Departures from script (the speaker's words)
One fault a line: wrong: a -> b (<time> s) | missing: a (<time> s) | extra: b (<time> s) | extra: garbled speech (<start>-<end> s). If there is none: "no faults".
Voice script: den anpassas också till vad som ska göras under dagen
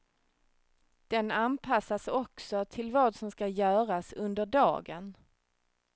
no faults